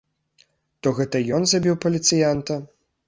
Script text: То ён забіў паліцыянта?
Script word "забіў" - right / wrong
right